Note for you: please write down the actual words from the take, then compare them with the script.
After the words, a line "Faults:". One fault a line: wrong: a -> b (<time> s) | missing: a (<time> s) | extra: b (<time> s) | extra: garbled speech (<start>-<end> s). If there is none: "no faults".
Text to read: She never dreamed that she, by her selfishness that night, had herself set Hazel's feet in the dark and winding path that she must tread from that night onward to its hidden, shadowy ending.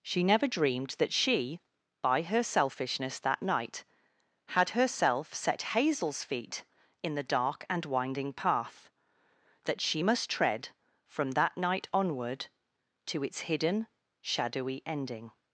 She never dreamed that she, by her selfishness that night, had herself set Hazel's feet in the dark and winding path that she must tread from that night onward to its hidden, shadowy ending.
Faults:
no faults